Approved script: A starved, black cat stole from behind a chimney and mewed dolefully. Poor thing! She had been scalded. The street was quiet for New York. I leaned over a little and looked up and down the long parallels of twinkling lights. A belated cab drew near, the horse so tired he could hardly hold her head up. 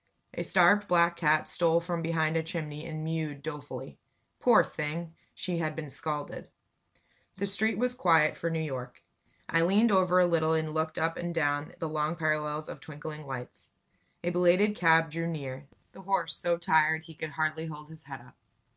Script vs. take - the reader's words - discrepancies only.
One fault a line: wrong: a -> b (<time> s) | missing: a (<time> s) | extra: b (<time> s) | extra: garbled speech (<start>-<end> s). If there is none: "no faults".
wrong: her -> his (17.9 s)